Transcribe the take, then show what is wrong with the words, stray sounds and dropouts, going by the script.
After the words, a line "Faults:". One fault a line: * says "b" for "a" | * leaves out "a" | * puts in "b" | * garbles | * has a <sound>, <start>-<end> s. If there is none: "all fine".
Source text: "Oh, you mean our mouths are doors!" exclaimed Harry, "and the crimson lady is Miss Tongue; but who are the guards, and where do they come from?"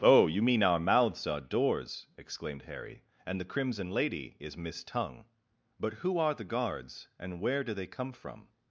"Oh, you mean our mouths are doors!" exclaimed Harry, "and the crimson lady is Miss Tongue; but who are the guards, and where do they come from?"
Faults:
all fine